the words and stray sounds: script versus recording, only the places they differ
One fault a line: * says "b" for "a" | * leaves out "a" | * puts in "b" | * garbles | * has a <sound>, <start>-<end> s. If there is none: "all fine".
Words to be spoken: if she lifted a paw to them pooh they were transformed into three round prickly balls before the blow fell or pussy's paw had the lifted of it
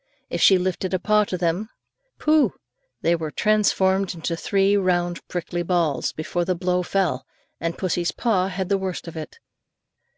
* says "and" for "or"
* says "worst" for "lifted"